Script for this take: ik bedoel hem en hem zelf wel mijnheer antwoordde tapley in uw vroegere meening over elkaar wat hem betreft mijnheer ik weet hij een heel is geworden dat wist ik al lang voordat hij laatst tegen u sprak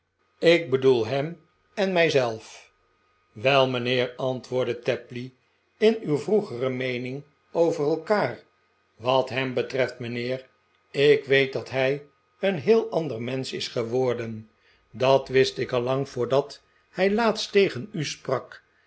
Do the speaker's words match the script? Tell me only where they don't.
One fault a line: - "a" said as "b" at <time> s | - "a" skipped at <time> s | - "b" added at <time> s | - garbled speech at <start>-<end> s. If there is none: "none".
- "hem" said as "mij" at 1.9 s
- "dat" added at 11.5 s
- "ander mensch" added at 12.9 s